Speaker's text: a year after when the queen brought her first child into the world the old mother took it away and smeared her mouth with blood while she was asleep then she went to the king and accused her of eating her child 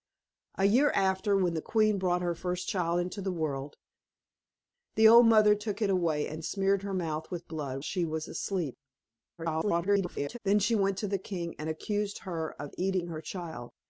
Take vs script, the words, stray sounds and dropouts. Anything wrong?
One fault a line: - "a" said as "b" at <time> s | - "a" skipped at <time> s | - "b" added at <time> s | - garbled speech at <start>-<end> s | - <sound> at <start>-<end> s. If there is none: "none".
- "while" skipped at 7.8 s
- garbled speech at 9.4-10.4 s